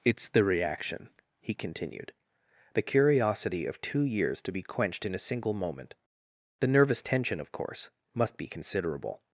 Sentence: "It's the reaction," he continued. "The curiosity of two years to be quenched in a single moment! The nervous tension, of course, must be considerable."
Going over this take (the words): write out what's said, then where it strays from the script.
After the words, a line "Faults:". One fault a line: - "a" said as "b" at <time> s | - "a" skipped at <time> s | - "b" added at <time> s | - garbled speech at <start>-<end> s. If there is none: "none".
"It's the reaction," he continued. "The curiosity of two years to be quenched in a single moment! The nervous tension, of course, must be considerable."
Faults:
none